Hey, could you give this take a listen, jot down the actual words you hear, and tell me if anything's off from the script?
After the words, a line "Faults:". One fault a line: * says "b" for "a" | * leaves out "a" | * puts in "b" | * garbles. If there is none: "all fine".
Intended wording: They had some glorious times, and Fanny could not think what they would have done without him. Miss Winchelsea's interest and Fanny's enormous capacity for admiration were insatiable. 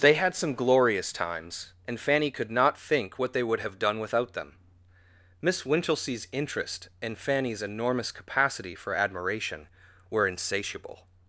They had some glorious times, and Fanny could not think what they would have done without them. Miss Winchelsea's interest and Fanny's enormous capacity for admiration were insatiable.
Faults:
* says "them" for "him"